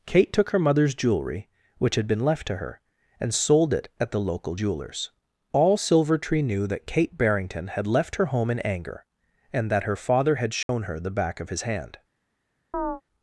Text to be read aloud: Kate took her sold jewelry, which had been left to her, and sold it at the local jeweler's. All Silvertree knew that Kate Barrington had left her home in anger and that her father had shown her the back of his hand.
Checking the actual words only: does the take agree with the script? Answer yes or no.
no